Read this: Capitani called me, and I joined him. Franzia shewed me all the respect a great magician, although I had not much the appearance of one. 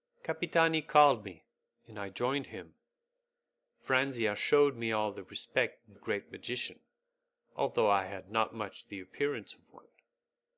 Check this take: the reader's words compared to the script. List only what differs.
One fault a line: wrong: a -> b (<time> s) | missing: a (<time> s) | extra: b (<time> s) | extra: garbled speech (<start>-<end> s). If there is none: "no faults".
no faults